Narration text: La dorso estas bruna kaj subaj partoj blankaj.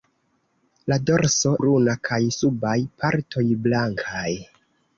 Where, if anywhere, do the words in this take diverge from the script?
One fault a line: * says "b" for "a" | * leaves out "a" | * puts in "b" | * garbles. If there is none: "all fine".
* leaves out "estas"